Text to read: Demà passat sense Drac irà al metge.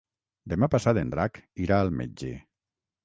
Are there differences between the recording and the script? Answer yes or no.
yes